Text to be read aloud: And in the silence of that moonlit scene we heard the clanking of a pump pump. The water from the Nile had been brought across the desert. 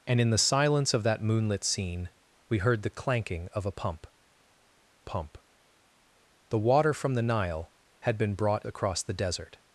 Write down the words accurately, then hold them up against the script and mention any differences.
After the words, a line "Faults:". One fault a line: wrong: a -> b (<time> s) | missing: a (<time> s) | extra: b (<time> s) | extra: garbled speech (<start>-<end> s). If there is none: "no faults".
And in the silence of that moonlit scene we heard the clanking of a pump pump. The water from the Nile had been brought across the desert.
Faults:
no faults